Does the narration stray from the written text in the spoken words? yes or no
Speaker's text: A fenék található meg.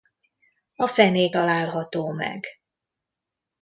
no